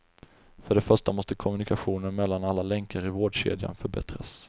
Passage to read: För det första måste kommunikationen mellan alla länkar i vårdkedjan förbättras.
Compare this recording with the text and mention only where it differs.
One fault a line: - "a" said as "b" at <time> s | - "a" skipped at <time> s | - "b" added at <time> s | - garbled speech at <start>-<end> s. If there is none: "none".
none